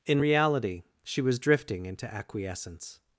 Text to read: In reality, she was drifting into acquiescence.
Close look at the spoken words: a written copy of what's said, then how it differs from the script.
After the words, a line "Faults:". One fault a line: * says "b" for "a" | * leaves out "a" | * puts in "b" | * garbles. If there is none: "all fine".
In reality, she was drifting into acquiescence.
Faults:
all fine